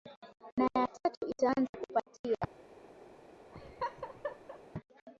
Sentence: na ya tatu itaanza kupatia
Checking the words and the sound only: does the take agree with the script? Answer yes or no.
no